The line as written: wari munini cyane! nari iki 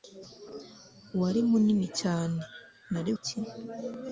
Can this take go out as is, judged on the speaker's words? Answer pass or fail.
pass